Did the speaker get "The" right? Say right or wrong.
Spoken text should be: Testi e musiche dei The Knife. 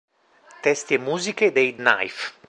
wrong